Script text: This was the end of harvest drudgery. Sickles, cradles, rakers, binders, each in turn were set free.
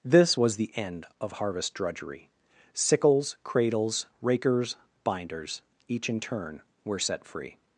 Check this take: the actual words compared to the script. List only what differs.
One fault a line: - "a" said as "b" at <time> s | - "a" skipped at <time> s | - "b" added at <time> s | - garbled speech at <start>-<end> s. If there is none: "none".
none